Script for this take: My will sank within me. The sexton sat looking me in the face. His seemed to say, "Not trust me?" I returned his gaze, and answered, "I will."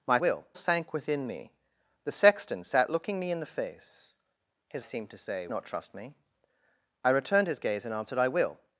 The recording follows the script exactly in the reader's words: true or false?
true